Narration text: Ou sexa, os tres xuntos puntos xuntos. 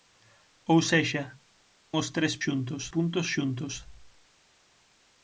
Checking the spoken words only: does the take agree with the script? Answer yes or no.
yes